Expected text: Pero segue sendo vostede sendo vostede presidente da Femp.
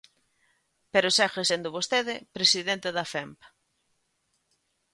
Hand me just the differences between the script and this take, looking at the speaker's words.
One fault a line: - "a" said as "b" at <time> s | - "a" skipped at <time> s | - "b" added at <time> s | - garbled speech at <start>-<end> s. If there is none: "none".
- "sendo vostede" skipped at 2.1 s